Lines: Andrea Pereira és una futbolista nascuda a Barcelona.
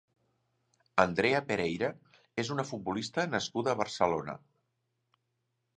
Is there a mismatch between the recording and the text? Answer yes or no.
no